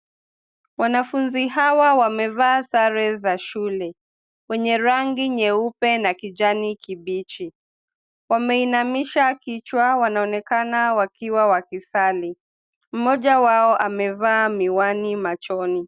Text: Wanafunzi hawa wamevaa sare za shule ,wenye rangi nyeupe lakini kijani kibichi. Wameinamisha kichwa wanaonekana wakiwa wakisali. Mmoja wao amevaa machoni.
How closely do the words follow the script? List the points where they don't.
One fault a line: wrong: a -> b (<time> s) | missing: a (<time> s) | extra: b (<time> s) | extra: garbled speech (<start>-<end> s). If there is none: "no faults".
wrong: lakini -> na (6.0 s)
extra: miwani (14.5 s)